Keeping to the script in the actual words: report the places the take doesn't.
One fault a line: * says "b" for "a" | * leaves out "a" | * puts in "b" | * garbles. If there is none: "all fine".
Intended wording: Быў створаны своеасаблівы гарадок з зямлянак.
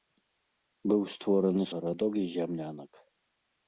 * leaves out "своеасаблівы"